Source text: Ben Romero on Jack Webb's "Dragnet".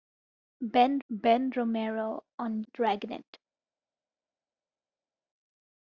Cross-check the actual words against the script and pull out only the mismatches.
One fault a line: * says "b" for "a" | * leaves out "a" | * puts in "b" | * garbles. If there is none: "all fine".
* puts in "ben"
* leaves out "Jack Webb's"